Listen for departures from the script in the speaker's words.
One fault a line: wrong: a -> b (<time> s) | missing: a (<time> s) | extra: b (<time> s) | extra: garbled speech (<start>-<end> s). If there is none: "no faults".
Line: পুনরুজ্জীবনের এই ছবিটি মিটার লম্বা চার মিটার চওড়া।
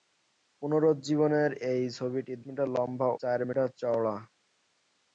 no faults